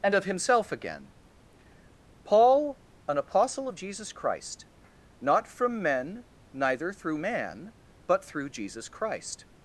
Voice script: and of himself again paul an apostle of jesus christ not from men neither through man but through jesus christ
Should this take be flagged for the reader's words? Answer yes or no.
no